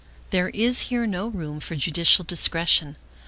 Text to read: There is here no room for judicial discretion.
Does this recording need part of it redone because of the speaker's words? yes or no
no